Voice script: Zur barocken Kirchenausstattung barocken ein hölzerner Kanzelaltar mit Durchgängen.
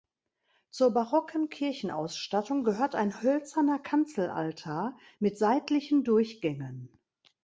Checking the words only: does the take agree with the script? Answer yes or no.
no